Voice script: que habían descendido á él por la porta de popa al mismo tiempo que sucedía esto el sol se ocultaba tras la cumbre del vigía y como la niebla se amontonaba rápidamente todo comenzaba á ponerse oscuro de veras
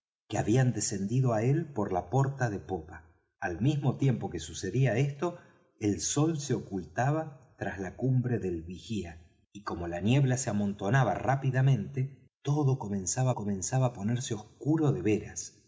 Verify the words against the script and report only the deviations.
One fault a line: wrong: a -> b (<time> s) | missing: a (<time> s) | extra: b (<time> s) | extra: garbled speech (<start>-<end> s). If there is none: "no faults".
extra: comenzaba (13.3 s)